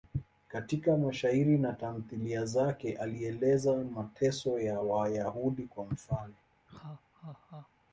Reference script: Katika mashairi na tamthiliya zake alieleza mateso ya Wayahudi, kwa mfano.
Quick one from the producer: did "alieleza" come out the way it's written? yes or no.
yes